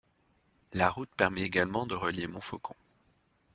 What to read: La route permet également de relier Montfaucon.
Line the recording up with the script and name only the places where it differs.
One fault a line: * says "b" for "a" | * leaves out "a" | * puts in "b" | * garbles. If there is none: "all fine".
all fine